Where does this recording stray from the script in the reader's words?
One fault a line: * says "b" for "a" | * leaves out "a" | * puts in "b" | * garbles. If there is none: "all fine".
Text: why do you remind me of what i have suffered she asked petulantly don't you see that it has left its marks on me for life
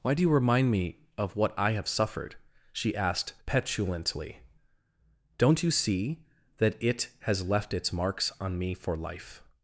all fine